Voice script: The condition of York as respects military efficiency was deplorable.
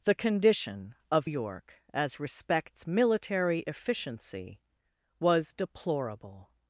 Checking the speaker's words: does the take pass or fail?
pass